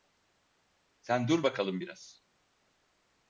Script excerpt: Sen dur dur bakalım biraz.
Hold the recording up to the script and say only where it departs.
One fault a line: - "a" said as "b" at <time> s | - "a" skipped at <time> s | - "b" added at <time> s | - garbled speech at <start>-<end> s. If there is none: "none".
- "dur" skipped at 1.4 s